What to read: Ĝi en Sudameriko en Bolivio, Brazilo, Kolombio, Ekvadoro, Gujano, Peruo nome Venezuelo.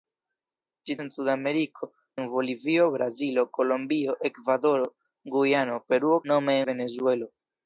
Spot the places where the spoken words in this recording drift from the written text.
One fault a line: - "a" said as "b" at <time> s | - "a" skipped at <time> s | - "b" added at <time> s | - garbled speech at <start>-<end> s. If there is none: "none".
none